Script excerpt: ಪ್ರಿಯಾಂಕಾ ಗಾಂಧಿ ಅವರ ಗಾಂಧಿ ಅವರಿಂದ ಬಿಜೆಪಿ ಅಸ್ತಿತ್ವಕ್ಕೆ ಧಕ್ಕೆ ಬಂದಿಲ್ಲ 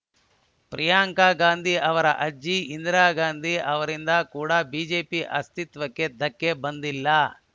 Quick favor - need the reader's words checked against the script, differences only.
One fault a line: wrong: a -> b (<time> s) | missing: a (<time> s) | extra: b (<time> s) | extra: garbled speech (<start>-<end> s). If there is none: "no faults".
extra: ಅಜ್ಜಿ ಇಂದಿರಾ (2.2 s)
extra: ಕೂಡ (4.3 s)